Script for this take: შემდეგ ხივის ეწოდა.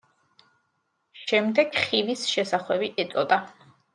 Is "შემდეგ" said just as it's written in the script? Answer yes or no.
yes